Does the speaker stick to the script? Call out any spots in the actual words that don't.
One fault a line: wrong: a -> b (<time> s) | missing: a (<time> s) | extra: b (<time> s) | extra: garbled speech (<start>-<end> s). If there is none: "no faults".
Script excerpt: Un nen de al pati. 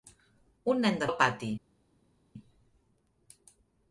no faults